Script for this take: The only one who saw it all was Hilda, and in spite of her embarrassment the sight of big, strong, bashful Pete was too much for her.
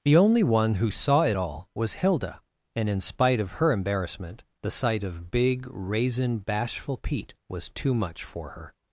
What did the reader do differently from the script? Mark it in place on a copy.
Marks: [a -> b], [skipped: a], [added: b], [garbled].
The only one who saw it all was Hilda, and in spite of her embarrassment the sight of big, [strong, -> raisin] bashful Pete was too much for her.